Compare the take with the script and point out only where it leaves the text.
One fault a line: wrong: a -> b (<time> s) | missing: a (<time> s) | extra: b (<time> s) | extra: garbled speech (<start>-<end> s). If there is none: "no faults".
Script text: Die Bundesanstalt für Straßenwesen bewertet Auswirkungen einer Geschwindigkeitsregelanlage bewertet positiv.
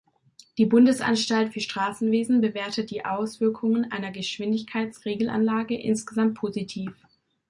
extra: die (2.9 s)
wrong: bewertet -> insgesamt (5.8 s)